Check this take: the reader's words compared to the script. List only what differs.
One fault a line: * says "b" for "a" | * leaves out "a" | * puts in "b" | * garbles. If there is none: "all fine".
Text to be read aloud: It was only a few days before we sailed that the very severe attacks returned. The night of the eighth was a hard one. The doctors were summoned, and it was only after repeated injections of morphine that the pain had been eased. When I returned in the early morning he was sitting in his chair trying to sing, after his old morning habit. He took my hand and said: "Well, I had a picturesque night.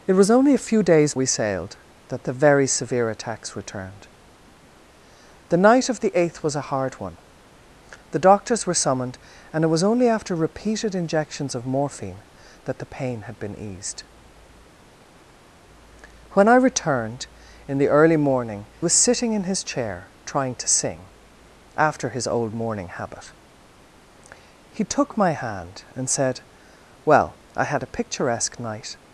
* leaves out "before"
* leaves out "he"